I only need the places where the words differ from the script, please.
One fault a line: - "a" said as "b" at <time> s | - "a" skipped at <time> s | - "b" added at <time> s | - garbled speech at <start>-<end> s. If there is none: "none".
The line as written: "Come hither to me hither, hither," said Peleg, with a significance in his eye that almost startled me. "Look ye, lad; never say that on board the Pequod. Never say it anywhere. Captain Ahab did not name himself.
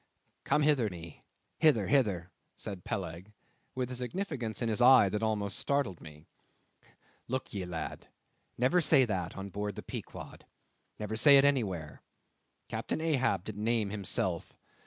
- "to" skipped at 0.9 s
- "not" skipped at 13.6 s